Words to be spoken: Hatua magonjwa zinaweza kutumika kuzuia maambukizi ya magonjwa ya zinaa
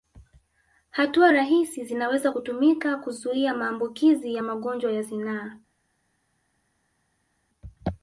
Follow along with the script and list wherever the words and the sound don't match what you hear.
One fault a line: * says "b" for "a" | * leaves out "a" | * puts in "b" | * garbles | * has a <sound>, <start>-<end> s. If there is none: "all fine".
* says "rahisi" for "magonjwa"